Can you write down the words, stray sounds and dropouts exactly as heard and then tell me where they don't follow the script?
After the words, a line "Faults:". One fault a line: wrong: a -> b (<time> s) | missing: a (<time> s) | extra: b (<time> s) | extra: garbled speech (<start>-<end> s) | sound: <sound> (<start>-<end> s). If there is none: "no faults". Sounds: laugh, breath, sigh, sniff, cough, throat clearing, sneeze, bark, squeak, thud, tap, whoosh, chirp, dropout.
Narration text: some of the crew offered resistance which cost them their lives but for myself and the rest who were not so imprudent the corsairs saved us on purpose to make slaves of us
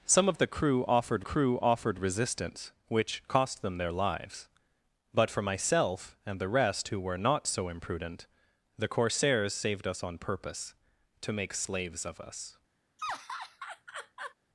some of the crew offered crew offered resistance which cost them their lives but for myself and the rest who were not so imprudent the corsairs saved us on purpose to make slaves of us
Faults:
extra: crew offered (1.2 s)
sound: laugh (13.0-14.3 s)